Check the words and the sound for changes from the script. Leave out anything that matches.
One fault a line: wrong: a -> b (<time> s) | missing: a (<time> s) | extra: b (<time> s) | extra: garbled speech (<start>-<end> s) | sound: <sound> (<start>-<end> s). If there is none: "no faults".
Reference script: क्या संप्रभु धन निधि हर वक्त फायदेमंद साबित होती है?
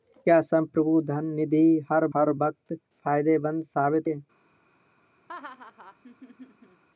extra: हर (2.2 s)
missing: होती (4.1 s)
sound: laugh (5.3-6.8 s)